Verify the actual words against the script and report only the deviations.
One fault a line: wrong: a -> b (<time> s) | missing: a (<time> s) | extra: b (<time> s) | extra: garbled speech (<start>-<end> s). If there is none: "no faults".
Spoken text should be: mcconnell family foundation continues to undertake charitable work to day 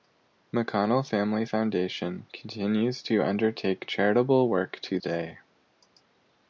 no faults